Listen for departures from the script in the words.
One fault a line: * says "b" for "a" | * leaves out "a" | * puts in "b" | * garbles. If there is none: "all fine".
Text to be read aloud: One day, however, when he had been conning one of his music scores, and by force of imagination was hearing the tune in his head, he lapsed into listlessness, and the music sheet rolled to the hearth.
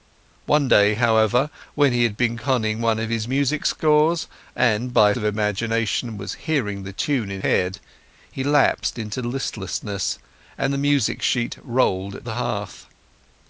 * leaves out "force"
* leaves out "his"
* leaves out "to"